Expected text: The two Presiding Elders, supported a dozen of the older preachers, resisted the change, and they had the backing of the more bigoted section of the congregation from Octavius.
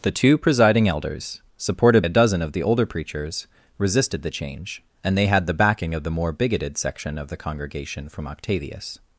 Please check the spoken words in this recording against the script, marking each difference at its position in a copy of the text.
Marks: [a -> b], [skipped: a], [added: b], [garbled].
The two Presiding Elders, supported a dozen of the older preachers, resisted the change, and they had the backing of the more bigoted section of the congregation from Octavius.